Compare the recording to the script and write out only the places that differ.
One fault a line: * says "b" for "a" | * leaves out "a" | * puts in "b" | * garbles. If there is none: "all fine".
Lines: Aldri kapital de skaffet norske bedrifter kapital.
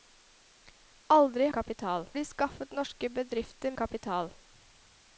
all fine